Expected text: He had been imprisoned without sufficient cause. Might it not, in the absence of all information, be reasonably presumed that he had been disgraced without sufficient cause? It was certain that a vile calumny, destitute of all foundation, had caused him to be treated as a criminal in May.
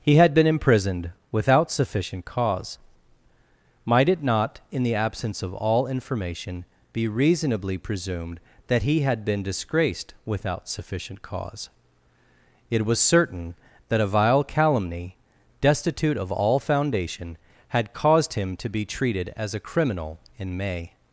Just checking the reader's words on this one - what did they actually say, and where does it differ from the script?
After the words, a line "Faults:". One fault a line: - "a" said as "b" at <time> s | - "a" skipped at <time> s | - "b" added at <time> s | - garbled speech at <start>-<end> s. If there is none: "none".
He had been imprisoned without sufficient cause. Might it not, in the absence of all information, be reasonably presumed that he had been disgraced without sufficient cause? It was certain that a vile calumny, destitute of all foundation, had caused him to be treated as a criminal in May.
Faults:
none